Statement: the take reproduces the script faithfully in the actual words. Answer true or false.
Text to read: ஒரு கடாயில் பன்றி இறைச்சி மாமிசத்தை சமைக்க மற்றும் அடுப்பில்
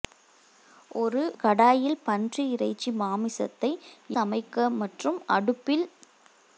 true